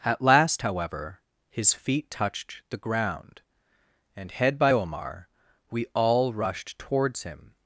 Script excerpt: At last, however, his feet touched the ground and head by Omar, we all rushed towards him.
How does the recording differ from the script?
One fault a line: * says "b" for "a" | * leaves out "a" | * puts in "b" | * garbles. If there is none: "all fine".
all fine